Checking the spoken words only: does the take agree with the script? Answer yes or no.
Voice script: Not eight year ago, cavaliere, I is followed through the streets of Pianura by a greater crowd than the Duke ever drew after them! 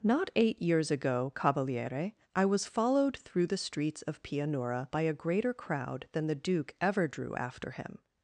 no